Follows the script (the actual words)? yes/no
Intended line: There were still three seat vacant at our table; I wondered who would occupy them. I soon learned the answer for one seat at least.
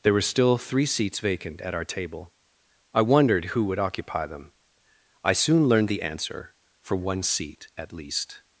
no